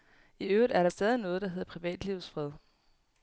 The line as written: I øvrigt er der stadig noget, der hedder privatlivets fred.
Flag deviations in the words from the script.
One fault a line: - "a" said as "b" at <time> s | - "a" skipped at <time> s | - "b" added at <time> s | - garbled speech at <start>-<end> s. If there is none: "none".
none